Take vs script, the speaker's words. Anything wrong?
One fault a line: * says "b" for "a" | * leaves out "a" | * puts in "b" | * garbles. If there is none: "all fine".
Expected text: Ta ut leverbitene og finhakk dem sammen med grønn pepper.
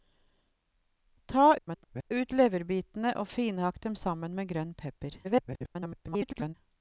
* garbles
* garbles